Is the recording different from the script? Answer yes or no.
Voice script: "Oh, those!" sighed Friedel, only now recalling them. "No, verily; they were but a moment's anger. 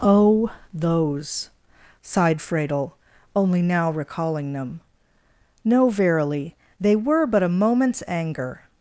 no